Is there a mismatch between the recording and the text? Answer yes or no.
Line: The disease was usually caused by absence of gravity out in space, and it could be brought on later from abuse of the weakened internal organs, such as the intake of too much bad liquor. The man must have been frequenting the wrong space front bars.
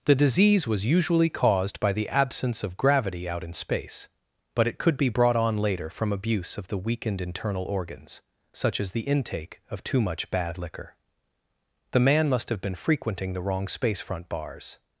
yes